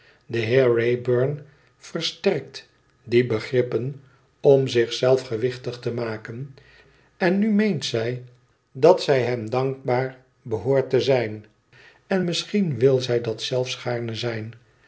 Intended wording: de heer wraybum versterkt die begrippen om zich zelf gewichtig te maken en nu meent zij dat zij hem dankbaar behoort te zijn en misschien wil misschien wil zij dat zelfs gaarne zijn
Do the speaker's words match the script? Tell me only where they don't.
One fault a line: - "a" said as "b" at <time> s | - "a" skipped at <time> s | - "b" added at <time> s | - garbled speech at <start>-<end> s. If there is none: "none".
- "misschien wil" skipped at 13.0 s